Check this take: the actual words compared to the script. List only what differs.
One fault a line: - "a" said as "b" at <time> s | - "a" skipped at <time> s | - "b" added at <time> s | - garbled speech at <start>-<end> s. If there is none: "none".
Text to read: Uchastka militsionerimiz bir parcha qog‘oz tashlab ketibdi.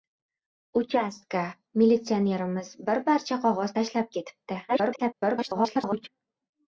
- garbled speech at 4.7-6.1 s